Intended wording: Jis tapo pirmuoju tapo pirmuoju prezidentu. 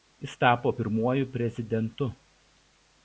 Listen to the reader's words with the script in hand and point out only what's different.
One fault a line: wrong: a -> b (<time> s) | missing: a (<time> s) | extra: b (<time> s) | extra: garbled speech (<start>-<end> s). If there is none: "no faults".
missing: tapo pirmuoju (1.3 s)